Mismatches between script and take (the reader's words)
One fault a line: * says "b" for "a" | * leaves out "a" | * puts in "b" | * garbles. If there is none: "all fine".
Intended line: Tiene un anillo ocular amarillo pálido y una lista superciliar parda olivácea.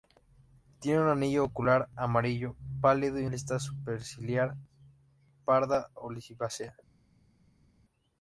* leaves out "una"